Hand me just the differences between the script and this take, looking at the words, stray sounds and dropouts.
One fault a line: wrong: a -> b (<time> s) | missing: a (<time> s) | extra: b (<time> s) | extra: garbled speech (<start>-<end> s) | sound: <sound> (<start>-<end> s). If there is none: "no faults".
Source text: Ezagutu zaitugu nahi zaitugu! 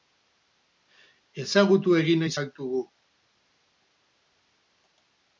wrong: zaitugu -> egin (2.0 s)